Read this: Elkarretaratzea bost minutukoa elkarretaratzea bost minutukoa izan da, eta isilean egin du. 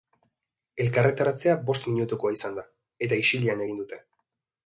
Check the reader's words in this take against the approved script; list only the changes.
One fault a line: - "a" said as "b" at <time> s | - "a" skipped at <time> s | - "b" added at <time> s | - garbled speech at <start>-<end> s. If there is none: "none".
- "elkarretaratzea bost minutukoa" skipped at 2.3 s
- "du" said as "dute" at 3.8 s